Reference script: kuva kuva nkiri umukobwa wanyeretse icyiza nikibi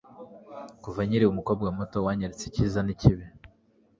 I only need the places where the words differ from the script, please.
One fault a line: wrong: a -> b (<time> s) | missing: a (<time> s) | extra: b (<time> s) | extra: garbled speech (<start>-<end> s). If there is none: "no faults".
missing: kuva (1.0 s)
extra: muto (1.8 s)